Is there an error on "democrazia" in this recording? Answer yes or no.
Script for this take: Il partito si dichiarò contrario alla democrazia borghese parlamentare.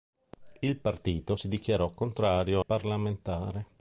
yes